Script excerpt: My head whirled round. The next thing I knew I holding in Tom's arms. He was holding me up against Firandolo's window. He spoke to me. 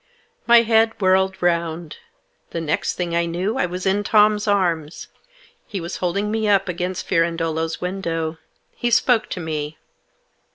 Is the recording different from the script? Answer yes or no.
yes